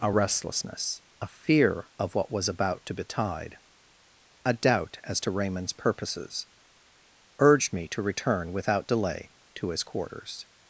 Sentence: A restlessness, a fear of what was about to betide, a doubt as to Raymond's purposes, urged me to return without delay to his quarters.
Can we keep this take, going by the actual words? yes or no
yes